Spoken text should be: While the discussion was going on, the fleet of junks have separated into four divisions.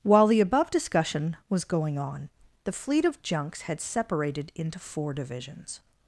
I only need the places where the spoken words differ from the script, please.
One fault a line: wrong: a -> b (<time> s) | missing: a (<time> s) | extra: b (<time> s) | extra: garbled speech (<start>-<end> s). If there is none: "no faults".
extra: above (0.4 s)
wrong: have -> had (3.6 s)